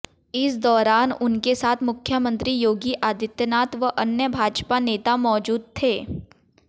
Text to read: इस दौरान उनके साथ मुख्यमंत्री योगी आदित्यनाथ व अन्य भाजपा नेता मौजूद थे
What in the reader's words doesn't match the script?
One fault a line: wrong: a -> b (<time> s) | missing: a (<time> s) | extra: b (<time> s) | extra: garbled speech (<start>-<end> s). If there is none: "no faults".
no faults